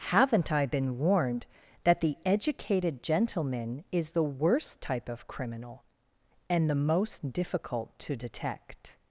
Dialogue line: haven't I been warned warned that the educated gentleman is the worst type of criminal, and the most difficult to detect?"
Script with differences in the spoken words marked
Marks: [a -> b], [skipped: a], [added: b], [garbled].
haven't I been warned [skipped: warned] that the educated gentleman is the worst type of criminal, and the most difficult to detect?"